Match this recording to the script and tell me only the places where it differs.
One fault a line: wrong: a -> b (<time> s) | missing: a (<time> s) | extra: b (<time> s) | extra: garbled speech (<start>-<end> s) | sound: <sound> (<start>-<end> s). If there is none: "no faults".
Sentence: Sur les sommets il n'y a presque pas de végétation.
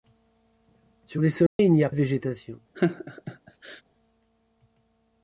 sound: dropout (1.5-1.6 s)
missing: presque pas (1.9 s)
sound: laugh (2.7-3.8 s)